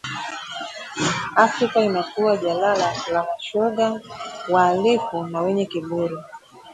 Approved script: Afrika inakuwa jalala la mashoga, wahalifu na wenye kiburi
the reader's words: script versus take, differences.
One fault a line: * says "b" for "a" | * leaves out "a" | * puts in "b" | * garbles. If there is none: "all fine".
all fine